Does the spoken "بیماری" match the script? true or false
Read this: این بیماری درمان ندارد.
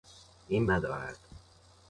false